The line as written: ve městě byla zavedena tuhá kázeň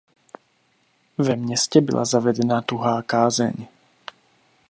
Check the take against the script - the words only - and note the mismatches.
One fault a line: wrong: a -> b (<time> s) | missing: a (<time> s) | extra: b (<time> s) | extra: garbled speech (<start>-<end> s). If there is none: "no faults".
no faults